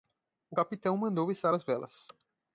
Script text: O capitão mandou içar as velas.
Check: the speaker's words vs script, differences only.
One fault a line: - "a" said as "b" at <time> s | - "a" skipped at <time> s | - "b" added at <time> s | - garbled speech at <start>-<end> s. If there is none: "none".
none